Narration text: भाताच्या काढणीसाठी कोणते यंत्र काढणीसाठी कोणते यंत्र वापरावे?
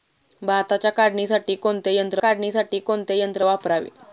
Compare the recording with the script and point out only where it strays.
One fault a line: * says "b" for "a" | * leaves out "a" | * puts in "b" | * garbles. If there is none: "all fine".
all fine